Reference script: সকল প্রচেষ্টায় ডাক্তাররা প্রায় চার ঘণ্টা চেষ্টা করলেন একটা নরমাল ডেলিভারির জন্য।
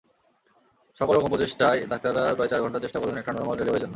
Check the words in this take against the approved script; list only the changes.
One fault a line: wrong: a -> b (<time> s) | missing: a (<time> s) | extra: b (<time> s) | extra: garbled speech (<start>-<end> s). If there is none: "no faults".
extra: রকম (1.1 s)